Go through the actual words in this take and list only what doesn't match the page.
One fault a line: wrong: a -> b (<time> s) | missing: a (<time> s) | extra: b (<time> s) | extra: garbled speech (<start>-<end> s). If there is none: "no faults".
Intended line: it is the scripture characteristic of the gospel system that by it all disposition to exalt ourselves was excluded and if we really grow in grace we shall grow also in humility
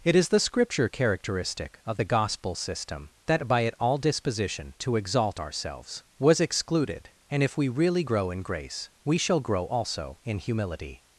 no faults